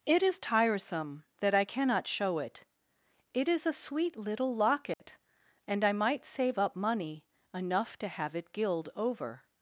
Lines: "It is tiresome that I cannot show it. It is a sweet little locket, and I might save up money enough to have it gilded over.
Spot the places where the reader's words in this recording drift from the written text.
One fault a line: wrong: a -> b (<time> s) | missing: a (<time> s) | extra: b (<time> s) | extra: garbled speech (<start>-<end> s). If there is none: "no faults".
wrong: gilded -> gild (8.5 s)